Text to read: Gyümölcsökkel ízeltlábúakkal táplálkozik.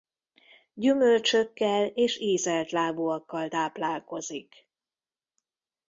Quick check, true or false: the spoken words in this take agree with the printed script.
false